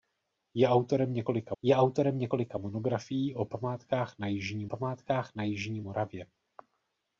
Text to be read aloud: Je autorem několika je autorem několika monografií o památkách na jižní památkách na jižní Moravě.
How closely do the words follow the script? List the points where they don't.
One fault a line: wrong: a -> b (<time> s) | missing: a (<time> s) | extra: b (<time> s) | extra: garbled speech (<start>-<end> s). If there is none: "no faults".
no faults